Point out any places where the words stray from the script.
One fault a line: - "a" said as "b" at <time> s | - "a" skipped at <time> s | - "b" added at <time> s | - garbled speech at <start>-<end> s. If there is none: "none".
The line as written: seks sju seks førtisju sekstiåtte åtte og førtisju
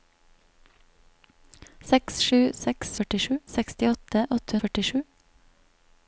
none